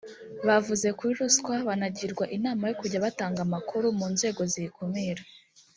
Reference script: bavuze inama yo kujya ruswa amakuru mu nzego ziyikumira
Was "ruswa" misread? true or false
true